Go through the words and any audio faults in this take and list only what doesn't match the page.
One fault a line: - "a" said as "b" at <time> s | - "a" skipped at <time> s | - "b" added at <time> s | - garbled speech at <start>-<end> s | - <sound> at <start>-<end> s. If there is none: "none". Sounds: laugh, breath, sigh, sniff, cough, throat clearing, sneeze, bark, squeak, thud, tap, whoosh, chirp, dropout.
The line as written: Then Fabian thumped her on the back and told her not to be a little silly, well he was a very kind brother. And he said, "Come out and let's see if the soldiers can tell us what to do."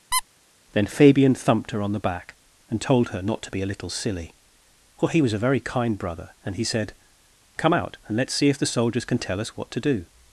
- squeak at 0.1-0.2 s